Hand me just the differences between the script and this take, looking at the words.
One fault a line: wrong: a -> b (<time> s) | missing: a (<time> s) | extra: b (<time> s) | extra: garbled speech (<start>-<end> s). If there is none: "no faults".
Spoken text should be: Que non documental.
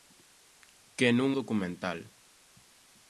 no faults